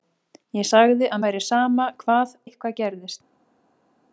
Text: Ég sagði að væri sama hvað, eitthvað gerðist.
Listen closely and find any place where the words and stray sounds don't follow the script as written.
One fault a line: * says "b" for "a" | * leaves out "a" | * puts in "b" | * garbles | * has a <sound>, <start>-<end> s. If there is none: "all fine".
all fine